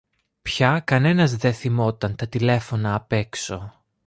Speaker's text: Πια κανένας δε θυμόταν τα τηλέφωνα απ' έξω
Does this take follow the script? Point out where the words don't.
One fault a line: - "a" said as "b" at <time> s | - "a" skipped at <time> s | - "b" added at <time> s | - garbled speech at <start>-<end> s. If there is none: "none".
none